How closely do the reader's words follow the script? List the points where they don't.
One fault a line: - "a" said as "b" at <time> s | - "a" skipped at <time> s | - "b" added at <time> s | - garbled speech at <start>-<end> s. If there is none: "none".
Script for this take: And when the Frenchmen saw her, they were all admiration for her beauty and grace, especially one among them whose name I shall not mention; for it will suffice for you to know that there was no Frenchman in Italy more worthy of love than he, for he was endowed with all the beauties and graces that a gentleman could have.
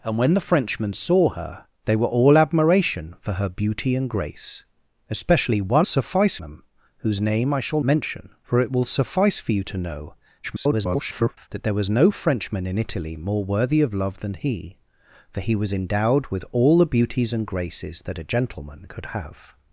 - "among" said as "suffice" at 5.8 s
- "not" skipped at 7.8 s
- garbled speech at 10.4-11.5 s